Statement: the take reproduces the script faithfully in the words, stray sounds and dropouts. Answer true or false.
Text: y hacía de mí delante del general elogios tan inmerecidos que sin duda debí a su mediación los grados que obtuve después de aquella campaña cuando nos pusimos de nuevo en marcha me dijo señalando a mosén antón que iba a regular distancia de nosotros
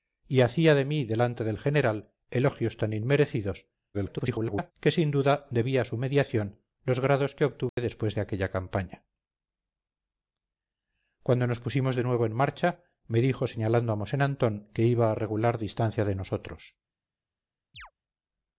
false